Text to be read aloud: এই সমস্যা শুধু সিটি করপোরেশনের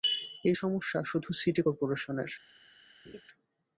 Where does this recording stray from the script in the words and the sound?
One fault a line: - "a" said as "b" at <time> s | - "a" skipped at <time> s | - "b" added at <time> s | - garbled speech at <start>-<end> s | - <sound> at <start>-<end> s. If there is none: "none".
- laugh at 3.0-3.2 s